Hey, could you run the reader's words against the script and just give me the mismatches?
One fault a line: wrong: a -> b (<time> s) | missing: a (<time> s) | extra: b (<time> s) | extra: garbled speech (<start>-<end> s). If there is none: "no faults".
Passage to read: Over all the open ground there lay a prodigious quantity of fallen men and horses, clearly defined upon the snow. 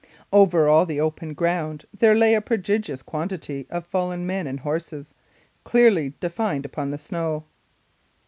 no faults